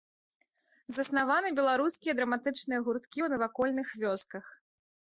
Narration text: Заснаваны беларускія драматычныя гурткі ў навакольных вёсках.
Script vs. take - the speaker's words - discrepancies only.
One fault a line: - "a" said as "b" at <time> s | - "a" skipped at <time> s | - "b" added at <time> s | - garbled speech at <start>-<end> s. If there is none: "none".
none